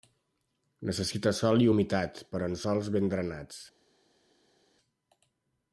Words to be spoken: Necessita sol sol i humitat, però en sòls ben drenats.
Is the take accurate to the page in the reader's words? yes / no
no